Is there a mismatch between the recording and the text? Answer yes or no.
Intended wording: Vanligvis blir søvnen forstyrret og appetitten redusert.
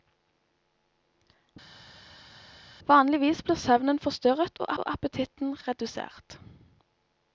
yes